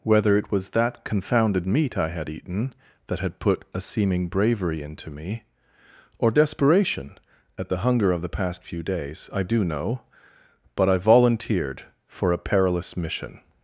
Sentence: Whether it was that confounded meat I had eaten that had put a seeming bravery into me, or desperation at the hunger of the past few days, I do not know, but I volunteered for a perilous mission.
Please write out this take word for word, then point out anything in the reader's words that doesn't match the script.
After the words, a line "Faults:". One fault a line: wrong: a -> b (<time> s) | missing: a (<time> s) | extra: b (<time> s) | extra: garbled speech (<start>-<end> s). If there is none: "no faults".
Whether it was that confounded meat I had eaten that had put a seeming bravery into me, or desperation at the hunger of the past few days, I do know, but I volunteered for a perilous mission.
Faults:
missing: not (9.6 s)